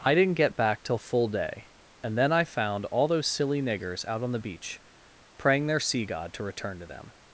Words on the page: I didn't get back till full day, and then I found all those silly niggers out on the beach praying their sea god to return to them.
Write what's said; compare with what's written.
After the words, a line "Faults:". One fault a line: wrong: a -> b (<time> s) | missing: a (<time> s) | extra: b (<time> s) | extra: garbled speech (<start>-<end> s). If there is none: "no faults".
I didn't get back till full day, and then I found all those silly niggers out on the beach praying their sea god to return to them.
Faults:
no faults